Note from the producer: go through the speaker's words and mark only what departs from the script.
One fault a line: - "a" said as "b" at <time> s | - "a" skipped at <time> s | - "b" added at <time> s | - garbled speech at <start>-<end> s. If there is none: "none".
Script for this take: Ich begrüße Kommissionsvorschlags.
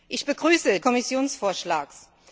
none